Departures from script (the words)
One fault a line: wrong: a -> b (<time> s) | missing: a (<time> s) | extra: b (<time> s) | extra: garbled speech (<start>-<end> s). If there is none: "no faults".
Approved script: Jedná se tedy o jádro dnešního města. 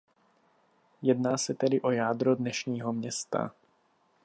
no faults